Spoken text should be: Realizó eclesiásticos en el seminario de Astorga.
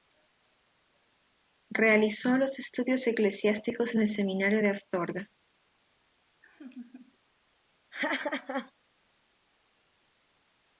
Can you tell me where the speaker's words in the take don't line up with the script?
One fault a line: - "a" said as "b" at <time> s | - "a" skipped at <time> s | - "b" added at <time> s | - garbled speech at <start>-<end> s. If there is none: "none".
- "los estudios" added at 2.4 s